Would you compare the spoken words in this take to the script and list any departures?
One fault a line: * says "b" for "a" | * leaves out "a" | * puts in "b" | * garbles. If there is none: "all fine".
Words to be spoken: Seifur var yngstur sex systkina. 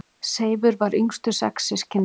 all fine